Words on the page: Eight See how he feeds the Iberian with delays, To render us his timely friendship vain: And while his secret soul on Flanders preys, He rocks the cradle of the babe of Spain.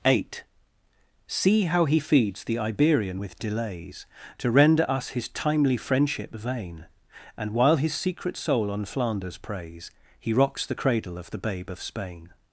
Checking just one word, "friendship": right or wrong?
right